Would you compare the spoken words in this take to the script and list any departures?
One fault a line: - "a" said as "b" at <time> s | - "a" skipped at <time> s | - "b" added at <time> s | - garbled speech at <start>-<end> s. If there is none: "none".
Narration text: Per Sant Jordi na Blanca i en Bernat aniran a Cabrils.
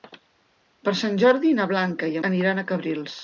- "en Bernat" skipped at 2.2 s